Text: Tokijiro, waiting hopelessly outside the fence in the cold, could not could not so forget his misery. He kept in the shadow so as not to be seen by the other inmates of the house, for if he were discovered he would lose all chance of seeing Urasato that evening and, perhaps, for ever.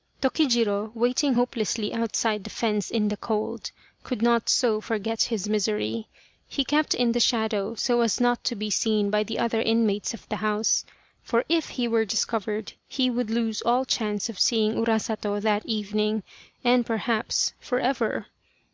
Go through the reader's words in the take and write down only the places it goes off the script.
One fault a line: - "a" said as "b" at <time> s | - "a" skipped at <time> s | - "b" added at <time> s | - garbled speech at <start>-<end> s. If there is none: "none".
- "could not" skipped at 4.5 s